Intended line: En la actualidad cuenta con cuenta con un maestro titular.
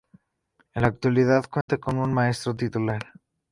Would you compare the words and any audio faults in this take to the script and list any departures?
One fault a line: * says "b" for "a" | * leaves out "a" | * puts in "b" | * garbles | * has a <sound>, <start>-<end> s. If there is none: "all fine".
* has a dropout, 1.6-1.7 s
* leaves out "cuenta con"